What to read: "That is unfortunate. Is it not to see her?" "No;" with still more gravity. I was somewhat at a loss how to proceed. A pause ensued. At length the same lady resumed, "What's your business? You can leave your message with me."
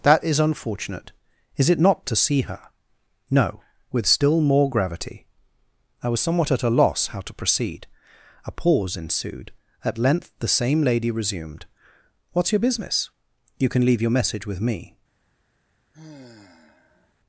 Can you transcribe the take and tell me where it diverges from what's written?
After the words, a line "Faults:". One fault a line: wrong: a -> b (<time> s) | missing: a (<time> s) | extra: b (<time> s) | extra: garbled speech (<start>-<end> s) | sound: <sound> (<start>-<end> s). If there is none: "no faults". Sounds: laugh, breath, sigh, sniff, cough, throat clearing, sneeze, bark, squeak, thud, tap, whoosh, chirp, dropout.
"That is unfortunate. Is it not to see her?" "No;" with still more gravity. I was somewhat at a loss how to proceed. A pause ensued. At length the same lady resumed, "What's your business? You can leave your message with me."
Faults:
sound: sigh (15.9-17.1 s)